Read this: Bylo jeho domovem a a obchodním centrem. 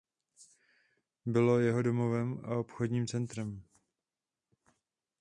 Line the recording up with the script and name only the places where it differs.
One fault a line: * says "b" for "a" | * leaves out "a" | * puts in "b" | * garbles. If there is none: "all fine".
* leaves out "a"